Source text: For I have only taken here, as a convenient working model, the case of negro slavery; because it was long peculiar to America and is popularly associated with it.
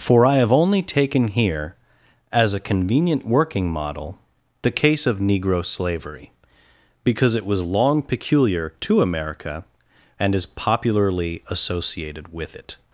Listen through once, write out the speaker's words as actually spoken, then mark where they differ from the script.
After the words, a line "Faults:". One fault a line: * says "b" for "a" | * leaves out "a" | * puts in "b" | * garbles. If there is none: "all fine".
For I have only taken here, as a convenient working model, the case of negro slavery; because it was long peculiar to America and is popularly associated with it.
Faults:
all fine